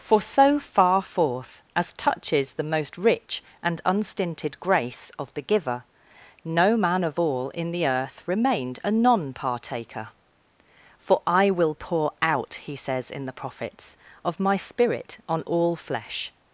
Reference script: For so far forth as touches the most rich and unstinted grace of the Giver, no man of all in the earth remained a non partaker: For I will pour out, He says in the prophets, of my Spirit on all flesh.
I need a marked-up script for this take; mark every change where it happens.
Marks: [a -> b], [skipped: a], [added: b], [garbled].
For so far forth as touches the most rich and unstinted grace of the Giver, no man of all in the earth remained a non partaker: For I will pour out, He says in the prophets, of my Spirit on all flesh.